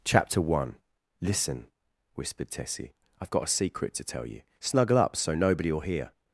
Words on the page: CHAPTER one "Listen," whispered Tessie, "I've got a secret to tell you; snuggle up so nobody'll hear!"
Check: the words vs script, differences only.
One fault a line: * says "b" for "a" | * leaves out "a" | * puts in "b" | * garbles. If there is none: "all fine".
all fine